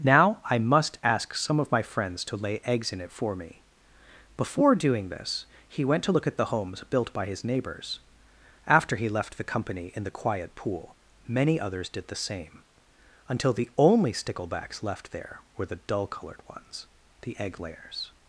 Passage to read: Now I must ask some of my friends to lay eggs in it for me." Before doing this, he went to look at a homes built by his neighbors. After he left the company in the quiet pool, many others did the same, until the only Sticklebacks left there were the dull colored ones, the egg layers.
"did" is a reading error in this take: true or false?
false